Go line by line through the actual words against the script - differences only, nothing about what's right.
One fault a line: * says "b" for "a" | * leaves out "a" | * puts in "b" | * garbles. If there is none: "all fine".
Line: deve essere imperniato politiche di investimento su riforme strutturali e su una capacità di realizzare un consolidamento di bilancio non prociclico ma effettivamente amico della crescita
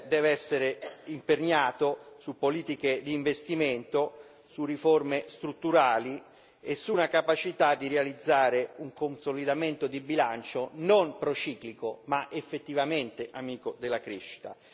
* puts in "su"